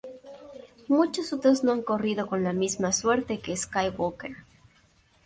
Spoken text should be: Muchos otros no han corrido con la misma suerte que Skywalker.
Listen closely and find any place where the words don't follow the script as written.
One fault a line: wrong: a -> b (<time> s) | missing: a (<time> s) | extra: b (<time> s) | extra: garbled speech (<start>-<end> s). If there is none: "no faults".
no faults